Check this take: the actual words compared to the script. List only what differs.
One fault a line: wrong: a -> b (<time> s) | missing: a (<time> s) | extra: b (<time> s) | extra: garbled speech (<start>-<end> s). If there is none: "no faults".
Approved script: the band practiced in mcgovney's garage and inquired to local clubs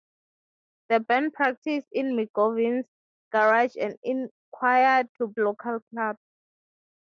no faults